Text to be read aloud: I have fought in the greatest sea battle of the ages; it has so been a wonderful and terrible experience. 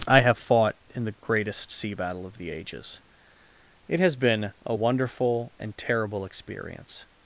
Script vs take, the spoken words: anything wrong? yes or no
yes